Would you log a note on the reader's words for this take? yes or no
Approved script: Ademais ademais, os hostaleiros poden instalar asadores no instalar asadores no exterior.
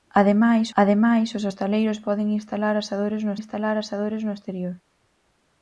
no